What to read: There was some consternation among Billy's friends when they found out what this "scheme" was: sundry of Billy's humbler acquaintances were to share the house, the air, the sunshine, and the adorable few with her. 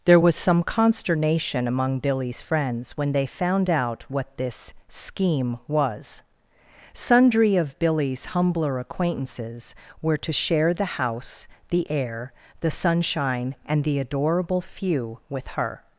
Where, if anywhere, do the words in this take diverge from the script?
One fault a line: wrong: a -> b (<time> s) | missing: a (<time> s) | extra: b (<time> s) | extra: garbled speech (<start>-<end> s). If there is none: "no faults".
no faults